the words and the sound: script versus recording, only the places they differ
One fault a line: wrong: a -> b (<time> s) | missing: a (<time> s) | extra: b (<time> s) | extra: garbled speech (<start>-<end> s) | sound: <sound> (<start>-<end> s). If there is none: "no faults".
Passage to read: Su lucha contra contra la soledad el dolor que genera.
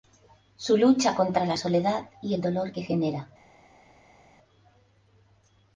missing: contra (1.4 s)
extra: y (2.2 s)